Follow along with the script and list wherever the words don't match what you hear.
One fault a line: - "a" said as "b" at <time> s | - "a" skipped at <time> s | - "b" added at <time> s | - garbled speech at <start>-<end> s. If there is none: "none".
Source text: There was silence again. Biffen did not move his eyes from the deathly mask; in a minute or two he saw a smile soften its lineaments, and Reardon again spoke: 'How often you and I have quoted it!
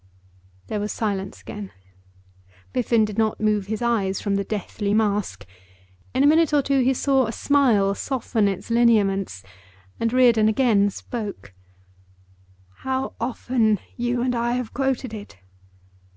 none